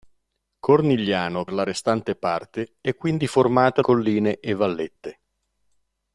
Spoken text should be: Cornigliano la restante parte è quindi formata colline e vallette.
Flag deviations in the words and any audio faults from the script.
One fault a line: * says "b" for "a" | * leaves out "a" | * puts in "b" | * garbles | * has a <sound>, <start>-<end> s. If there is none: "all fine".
all fine